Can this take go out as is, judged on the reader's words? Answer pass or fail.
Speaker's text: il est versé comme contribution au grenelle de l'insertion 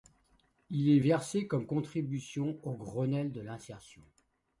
pass